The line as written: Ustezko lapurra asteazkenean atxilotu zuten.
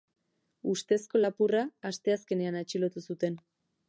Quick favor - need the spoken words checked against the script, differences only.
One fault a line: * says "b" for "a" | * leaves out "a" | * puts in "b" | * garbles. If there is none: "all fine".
all fine